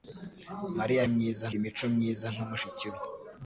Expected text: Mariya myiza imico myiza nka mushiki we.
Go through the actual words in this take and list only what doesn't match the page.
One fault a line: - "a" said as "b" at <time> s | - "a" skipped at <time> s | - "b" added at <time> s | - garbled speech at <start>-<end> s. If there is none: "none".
none